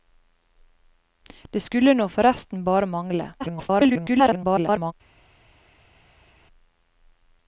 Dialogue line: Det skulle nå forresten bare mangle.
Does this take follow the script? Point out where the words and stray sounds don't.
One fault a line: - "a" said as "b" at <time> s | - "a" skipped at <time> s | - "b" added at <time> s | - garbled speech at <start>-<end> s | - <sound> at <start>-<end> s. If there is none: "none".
- garbled speech at 3.4-4.9 s